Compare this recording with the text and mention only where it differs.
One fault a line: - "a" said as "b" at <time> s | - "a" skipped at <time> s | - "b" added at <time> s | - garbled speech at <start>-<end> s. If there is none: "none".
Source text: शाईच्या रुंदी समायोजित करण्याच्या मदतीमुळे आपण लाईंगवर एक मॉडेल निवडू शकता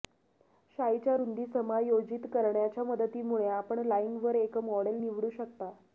none